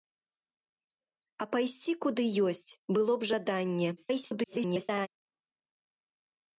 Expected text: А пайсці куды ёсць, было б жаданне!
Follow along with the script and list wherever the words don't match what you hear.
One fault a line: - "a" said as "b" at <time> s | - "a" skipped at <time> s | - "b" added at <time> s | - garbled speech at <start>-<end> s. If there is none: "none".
- garbled speech at 4.0-5.1 s